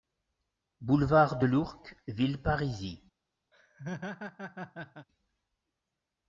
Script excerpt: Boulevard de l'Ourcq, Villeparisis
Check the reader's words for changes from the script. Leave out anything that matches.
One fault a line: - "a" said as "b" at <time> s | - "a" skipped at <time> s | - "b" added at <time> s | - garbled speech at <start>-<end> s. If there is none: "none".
none